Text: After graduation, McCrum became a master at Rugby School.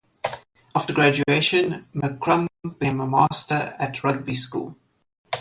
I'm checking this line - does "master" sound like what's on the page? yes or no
yes